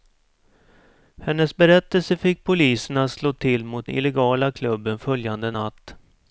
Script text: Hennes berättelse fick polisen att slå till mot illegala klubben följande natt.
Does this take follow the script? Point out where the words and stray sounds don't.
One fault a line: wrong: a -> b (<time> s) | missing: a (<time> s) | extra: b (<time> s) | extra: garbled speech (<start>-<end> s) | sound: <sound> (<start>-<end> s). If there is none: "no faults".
no faults